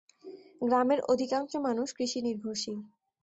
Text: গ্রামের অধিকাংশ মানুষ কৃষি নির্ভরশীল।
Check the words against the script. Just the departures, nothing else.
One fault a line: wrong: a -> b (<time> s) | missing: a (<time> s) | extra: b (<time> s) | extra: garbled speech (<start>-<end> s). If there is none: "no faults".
no faults